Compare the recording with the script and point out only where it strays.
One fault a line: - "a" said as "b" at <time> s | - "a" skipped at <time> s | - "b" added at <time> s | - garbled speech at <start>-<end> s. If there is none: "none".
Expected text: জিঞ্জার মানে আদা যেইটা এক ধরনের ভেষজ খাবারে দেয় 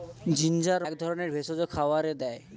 - "মানে আদা যেইটা" skipped at 0.8 s